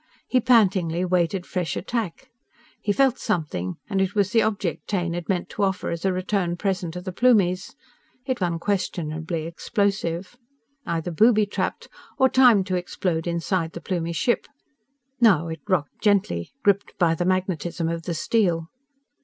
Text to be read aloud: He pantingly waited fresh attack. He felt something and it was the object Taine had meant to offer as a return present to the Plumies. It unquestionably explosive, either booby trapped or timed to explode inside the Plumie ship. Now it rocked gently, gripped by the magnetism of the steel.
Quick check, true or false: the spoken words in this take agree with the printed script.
true